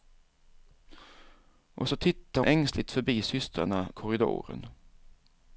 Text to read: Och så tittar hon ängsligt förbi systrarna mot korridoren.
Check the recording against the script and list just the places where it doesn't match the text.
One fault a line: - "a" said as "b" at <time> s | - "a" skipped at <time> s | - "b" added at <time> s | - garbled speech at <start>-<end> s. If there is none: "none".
- "hon" skipped at 2.4 s
- "mot" skipped at 3.9 s